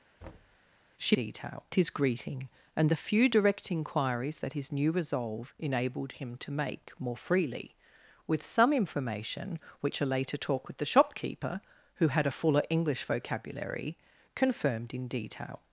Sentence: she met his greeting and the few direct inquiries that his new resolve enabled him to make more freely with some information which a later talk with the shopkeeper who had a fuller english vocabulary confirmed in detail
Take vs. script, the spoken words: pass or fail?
fail